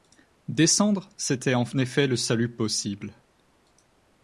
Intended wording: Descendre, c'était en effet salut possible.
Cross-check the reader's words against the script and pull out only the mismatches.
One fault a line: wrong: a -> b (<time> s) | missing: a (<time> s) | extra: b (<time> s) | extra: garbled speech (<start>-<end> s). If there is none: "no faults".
extra: le (2.1 s)